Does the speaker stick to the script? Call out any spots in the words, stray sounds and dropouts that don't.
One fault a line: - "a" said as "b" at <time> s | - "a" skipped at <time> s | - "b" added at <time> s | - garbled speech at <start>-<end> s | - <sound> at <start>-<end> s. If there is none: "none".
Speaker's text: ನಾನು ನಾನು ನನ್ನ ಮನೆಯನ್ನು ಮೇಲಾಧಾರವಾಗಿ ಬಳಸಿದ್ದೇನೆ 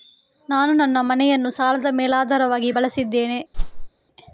- "ನಾನು" skipped at 0.7 s
- "ಸಾಲದ" added at 1.5 s
- whoosh at 3.5-3.9 s